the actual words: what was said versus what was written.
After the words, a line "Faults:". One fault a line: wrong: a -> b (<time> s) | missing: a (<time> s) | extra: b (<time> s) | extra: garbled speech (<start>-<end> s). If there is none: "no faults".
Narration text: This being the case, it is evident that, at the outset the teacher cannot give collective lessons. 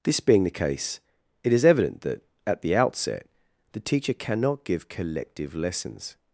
This being the case, it is evident that, at the outset the teacher cannot give collective lessons.
Faults:
no faults